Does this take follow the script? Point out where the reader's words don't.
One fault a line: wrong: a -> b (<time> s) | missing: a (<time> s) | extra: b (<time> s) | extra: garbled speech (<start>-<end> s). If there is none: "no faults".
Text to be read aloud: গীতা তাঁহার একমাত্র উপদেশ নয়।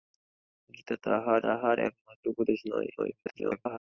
extra: তাঁহার (1.4 s)
extra: garbled speech (3.0-3.8 s)